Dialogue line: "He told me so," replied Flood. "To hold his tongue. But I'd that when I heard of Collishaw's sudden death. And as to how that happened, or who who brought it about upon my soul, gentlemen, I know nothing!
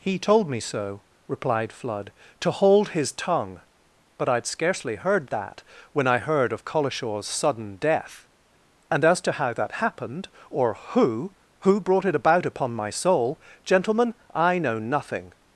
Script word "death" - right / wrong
right